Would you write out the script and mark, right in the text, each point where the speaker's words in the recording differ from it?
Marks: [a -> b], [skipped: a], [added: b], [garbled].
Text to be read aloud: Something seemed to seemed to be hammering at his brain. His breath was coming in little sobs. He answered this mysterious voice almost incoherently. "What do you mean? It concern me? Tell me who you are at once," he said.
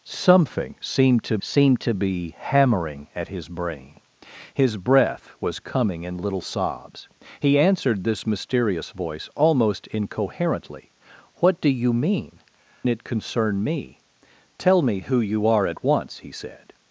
Something seemed to seemed to be hammering at his brain. His breath was coming in little sobs. He answered this mysterious voice almost incoherently. "What do you mean? It concern me? Tell me who you are at once," he said.